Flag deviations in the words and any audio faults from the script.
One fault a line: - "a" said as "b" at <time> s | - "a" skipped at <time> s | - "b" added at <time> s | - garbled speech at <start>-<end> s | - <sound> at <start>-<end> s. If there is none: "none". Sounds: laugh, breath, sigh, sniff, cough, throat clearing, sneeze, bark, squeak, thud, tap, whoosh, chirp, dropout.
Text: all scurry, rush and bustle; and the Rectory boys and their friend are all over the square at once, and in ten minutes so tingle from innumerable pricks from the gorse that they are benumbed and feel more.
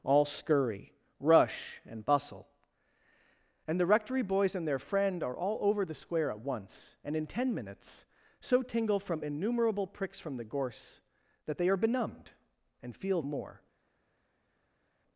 none